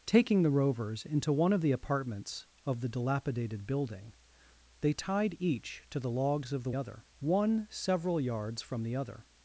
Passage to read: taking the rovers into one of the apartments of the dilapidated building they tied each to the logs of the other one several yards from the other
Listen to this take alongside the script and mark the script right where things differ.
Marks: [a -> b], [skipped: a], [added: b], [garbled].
taking the rovers into one of the apartments of the dilapidated building they tied each to the logs of the other one several yards from the other